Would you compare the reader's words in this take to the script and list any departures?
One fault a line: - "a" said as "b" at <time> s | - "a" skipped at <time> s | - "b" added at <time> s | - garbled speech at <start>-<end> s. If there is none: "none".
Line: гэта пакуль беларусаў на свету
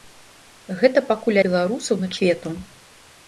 none